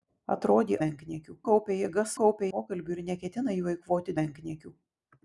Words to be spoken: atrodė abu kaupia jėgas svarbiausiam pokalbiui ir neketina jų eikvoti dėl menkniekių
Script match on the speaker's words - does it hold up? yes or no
no